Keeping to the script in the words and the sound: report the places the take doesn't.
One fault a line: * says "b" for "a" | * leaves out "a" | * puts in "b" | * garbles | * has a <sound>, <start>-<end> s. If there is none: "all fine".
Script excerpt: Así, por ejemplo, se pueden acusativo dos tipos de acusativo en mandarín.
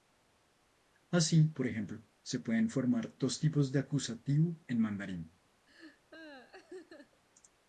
* says "formar" for "acusativo"
* has a laugh, 5.7-7.2 s